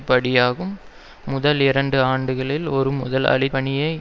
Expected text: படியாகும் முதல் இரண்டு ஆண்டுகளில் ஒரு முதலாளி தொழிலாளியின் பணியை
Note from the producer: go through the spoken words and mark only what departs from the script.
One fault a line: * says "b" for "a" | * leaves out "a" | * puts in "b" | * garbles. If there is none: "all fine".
* leaves out "தொழிலாளியின்"